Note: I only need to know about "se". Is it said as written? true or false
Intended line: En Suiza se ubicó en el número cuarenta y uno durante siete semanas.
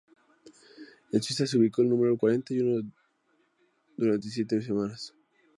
true